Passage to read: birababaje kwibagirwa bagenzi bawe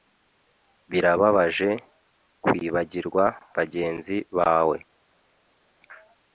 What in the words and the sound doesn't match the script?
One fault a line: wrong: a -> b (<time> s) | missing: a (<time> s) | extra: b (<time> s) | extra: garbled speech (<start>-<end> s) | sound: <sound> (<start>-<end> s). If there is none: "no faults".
no faults